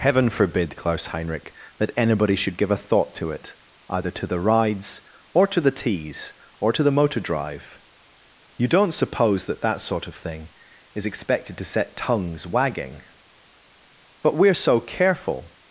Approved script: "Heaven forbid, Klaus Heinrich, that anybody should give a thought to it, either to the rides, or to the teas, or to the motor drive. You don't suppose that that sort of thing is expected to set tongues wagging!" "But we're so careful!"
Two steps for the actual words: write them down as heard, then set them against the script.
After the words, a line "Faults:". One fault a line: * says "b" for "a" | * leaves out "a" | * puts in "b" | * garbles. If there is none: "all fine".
"Heaven forbid, Klaus Heinrich, that anybody should give a thought to it, either to the rides, or to the teas, or to the motor drive. You don't suppose that that sort of thing is expected to set tongues wagging!" "But we're so careful!"
Faults:
all fine